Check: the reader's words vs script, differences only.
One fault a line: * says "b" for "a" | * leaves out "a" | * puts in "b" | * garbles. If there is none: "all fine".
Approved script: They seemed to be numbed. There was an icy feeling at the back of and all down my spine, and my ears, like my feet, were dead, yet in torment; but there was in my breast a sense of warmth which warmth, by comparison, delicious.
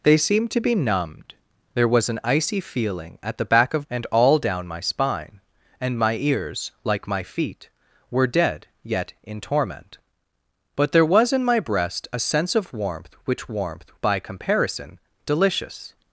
all fine